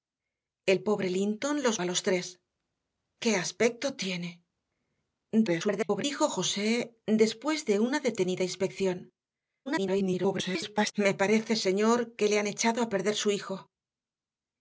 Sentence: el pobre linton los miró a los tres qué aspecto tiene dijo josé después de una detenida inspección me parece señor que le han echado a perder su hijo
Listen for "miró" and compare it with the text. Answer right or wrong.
wrong